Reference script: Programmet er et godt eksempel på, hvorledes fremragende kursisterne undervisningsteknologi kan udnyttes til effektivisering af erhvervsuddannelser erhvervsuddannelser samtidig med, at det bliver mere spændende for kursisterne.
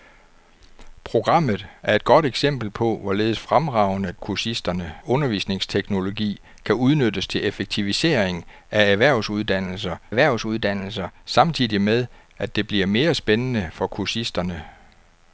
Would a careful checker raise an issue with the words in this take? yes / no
no